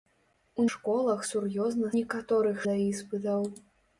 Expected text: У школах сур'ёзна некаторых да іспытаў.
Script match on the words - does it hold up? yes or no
yes